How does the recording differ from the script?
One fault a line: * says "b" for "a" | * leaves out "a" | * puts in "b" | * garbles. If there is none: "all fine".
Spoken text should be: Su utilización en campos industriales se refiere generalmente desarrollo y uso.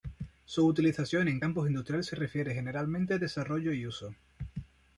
all fine